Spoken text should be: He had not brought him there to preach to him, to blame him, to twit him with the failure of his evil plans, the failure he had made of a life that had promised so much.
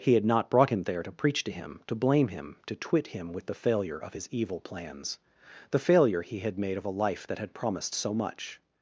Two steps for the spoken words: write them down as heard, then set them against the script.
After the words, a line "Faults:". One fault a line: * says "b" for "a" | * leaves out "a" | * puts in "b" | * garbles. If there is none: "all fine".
He had not brought him there to preach to him, to blame him, to twit him with the failure of his evil plans, the failure he had made of a life that had promised so much.
Faults:
all fine